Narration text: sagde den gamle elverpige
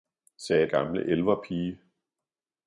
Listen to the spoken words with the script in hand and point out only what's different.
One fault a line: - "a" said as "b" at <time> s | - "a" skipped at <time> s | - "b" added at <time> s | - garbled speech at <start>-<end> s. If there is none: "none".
- "den" skipped at 0.7 s